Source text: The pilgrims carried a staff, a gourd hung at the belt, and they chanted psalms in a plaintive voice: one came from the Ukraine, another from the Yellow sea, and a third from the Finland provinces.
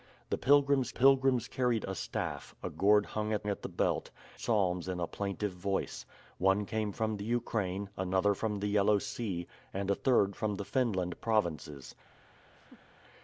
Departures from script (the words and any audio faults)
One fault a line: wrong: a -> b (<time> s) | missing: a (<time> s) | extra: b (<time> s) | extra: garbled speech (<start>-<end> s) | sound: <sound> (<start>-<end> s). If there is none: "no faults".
extra: pilgrims (0.9 s)
extra: at (3.5 s)
missing: and they chanted (4.1 s)
sound: laugh (12.5-13.0 s)